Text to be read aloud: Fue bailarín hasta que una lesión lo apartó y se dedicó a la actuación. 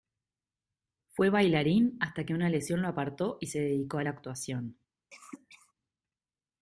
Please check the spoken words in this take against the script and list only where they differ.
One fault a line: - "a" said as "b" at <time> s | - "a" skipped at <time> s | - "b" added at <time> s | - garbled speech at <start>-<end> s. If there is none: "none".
none